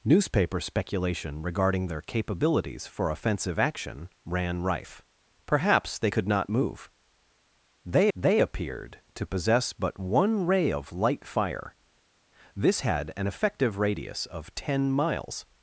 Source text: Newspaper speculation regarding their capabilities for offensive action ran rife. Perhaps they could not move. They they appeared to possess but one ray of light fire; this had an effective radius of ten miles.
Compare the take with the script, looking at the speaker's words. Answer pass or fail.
pass